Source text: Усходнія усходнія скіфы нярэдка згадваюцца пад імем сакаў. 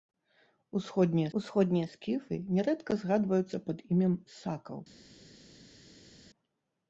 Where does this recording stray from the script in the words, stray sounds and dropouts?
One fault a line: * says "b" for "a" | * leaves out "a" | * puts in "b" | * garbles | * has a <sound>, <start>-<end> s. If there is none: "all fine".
all fine